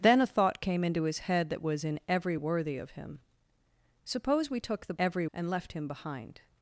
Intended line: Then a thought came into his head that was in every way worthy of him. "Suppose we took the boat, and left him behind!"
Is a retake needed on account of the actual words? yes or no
yes